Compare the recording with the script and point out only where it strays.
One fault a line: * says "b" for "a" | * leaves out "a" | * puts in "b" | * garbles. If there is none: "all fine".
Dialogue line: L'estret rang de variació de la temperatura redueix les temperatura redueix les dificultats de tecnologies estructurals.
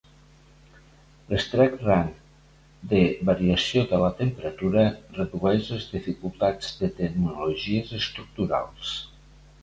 * leaves out "temperatura redueix les"